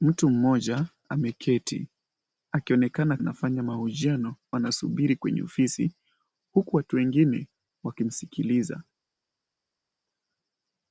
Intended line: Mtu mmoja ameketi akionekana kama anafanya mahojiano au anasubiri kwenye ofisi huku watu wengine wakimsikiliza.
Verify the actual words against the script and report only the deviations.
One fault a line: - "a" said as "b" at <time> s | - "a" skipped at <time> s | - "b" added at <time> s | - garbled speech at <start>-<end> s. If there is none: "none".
- "kama" skipped at 3.2 s
- "au" skipped at 4.4 s